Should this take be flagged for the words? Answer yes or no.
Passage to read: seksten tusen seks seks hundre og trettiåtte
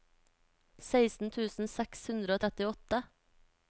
yes